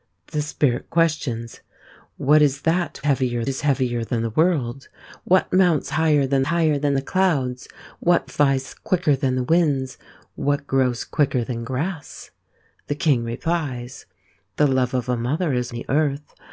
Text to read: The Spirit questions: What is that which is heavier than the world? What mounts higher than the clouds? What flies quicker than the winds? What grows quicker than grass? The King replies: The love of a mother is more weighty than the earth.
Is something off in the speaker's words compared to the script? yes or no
yes